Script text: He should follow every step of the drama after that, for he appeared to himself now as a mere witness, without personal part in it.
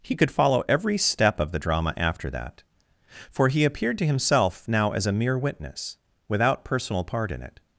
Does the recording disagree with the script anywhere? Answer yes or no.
yes